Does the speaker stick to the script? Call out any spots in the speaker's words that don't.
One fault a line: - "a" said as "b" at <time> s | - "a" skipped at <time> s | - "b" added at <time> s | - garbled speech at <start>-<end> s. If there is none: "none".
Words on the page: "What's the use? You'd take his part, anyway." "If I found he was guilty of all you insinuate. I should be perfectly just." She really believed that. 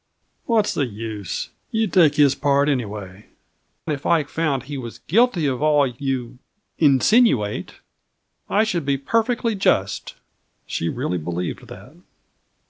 none